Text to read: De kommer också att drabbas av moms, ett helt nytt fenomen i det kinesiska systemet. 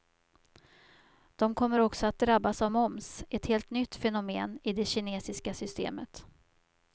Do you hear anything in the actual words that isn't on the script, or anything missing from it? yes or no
no